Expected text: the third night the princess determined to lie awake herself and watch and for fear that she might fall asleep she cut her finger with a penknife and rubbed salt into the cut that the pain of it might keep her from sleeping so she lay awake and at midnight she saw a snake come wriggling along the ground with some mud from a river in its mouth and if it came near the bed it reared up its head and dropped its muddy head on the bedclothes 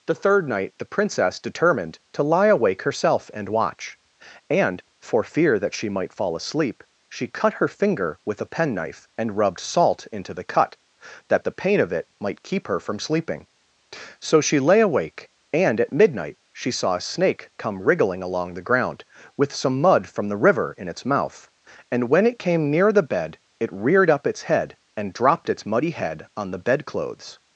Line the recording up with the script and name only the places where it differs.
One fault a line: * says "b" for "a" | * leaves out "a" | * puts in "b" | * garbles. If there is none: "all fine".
* says "the" for "a"
* says "when" for "if"